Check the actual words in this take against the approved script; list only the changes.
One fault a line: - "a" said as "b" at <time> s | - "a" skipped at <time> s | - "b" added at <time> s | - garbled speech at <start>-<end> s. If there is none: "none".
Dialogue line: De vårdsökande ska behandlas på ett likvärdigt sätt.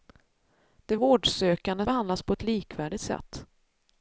- "ska" skipped at 1.9 s